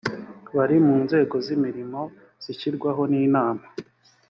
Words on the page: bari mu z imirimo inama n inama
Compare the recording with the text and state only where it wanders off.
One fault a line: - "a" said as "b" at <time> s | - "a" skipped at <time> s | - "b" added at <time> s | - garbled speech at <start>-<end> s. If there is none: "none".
- "nzego" added at 1.0 s
- "inama" said as "zishyirwaho" at 2.4 s